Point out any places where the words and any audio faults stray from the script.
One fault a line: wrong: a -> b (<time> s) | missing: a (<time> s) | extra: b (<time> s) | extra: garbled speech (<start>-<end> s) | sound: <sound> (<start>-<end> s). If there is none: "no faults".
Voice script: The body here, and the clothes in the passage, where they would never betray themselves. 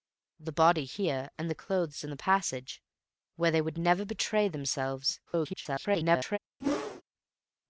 extra: garbled speech (5.3-6.4 s)
sound: whoosh (6.6-7.0 s)